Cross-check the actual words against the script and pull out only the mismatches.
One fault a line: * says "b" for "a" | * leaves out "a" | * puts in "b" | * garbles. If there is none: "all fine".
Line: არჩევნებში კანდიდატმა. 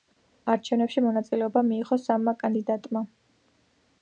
* puts in "მონაწილეობა მიიღო სამმა"